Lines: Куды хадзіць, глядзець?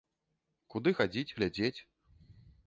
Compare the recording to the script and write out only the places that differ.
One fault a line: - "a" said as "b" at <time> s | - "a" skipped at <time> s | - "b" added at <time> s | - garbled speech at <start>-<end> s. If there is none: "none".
none